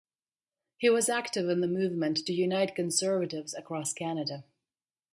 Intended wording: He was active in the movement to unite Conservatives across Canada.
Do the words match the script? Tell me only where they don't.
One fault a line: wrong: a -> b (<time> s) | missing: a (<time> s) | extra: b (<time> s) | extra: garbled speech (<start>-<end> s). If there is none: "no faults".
no faults